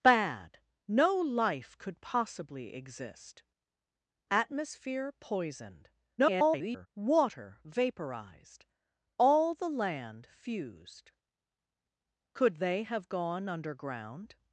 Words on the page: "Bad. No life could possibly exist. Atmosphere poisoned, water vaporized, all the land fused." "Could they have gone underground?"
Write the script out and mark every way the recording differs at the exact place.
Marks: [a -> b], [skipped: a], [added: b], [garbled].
"Bad. No life could possibly exist. Atmosphere poisoned, [garbled] water vaporized, all the land fused." "Could they have gone underground?"